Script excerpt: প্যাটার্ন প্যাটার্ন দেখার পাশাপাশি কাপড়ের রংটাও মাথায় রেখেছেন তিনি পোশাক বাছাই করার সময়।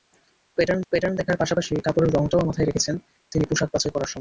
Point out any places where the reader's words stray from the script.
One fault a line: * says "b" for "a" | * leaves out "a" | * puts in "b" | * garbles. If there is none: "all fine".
all fine